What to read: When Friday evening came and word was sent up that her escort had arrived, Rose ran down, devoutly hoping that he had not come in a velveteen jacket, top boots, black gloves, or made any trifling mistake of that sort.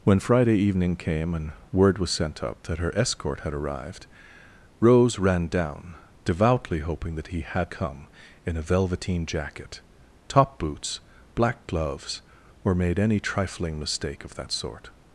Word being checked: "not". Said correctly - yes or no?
no